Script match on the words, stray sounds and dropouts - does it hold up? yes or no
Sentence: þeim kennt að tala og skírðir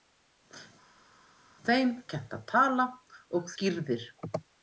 yes